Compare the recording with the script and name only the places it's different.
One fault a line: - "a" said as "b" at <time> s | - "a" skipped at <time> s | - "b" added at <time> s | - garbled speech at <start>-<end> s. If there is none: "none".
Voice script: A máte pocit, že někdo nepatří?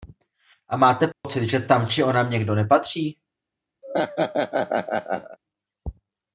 - "tam či onam" added at 1.6 s